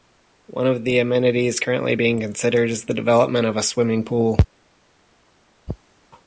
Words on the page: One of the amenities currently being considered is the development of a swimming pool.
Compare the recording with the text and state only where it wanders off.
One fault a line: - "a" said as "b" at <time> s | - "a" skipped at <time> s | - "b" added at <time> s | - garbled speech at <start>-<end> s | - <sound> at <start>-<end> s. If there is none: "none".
none